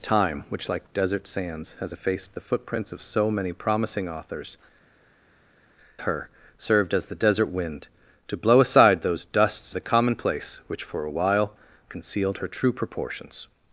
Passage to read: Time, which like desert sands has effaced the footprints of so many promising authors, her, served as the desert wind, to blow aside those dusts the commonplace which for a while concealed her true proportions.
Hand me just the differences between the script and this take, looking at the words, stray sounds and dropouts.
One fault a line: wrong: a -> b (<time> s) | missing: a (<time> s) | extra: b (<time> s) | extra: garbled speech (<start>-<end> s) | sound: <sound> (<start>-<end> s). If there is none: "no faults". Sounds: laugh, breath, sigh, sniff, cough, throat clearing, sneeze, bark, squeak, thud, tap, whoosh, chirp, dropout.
no faults